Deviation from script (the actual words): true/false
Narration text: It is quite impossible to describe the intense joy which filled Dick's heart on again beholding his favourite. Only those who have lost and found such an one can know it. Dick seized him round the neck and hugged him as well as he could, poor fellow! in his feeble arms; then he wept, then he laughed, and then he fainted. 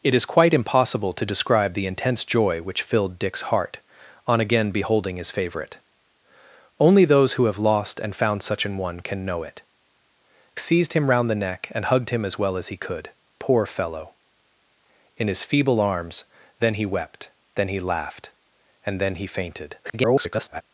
true